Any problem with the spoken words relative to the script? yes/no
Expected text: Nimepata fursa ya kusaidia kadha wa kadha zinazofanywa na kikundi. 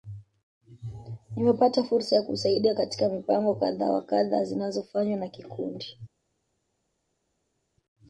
yes